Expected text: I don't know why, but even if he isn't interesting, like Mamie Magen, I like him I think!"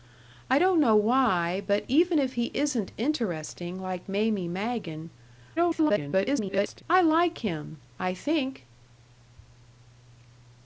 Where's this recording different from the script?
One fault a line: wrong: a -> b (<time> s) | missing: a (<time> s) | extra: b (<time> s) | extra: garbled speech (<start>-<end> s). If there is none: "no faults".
extra: garbled speech (5.6-6.8 s)